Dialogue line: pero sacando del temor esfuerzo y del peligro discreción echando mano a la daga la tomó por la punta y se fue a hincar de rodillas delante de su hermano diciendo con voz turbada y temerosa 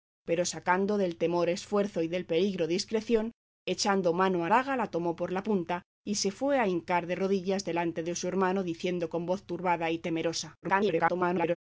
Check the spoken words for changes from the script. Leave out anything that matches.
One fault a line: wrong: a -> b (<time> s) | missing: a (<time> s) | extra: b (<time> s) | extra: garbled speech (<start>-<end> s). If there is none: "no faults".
missing: la (4.5 s)
extra: garbled speech (10.6-11.6 s)